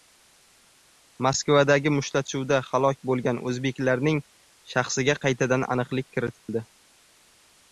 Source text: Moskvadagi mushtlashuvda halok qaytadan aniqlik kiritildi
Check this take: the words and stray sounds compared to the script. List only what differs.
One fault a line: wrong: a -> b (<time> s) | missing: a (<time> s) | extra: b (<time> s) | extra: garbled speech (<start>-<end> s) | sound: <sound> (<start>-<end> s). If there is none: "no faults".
extra: bo‘lgan o‘zbeklarning shaxsiga (3.1 s)
sound: dropout (6.4-6.5 s)